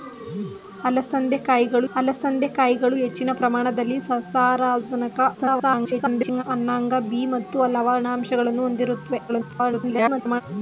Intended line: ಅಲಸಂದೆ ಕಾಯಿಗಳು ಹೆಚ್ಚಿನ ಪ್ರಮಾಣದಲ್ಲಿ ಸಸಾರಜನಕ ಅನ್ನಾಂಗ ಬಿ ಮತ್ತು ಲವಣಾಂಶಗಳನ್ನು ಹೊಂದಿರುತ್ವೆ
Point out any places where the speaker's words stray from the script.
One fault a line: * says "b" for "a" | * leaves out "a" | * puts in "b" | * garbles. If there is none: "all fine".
* puts in "ಅಲಸಂದೆ ಕಾಯಿಗಳು"
* garbles
* garbles